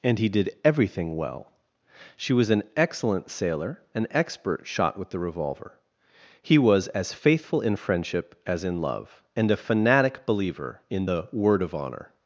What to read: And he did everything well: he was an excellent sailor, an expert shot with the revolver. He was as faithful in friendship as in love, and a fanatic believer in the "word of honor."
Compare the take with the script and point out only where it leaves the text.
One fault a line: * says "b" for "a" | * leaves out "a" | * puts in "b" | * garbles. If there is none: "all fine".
* says "she" for "he"